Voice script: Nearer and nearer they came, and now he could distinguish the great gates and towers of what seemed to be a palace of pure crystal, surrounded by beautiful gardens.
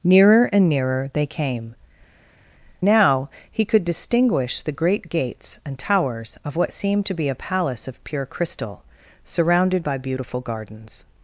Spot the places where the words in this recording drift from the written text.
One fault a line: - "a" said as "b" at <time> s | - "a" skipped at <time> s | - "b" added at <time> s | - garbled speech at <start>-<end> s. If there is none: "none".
- "and" skipped at 1.8 s